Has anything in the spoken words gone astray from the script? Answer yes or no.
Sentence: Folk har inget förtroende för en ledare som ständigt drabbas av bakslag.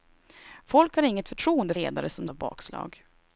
yes